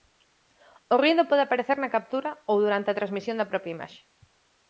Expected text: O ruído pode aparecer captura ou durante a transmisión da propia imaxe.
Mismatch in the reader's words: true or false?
true